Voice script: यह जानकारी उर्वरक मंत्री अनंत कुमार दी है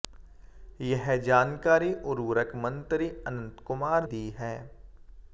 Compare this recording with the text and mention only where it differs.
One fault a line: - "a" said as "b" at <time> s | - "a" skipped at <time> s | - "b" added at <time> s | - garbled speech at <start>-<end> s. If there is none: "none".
none